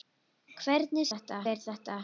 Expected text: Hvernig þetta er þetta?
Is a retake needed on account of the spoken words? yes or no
no